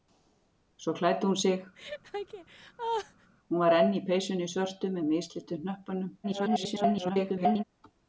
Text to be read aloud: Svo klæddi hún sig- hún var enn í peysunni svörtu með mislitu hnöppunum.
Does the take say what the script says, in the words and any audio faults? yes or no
no